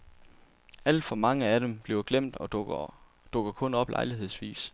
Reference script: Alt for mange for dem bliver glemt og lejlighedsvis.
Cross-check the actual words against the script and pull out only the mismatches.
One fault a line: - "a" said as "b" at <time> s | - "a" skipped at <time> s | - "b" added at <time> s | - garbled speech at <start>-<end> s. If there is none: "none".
- "for" said as "af" at 1.4 s
- "dukker kun op" added at 3.3 s